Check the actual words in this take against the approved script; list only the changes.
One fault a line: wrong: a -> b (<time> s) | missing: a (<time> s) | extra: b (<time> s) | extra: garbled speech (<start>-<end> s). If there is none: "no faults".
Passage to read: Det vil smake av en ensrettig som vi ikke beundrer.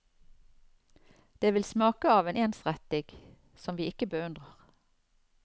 no faults